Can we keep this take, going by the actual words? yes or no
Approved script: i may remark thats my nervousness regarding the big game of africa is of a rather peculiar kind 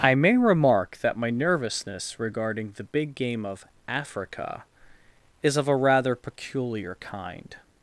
no